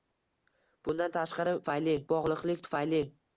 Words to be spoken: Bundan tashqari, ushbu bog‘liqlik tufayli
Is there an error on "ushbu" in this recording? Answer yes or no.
yes